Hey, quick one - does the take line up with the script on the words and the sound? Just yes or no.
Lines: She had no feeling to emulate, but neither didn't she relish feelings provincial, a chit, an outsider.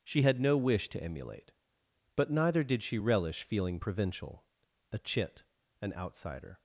no